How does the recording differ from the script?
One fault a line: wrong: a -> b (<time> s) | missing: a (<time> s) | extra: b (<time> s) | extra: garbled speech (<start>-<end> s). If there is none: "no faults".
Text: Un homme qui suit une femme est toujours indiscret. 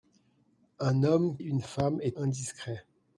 missing: qui suit (1.4 s)
missing: toujours (2.2 s)